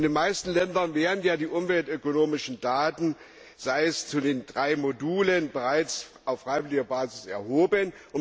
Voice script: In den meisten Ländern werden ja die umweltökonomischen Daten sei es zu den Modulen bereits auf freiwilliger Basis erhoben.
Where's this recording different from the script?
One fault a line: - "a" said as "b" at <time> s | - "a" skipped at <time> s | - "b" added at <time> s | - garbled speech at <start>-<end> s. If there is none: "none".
- "drei" added at 4.5 s